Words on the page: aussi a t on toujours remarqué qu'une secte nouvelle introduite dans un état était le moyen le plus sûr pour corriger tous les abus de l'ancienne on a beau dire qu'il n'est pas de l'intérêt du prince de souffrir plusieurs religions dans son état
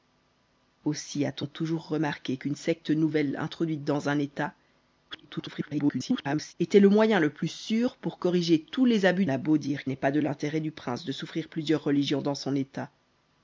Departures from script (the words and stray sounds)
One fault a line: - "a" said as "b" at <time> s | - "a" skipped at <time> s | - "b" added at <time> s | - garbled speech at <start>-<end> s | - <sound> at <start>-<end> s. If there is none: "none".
- garbled speech at 5.1-6.5 s
- "de l'ancienne on" skipped at 9.2 s
- "qu'il" skipped at 9.8 s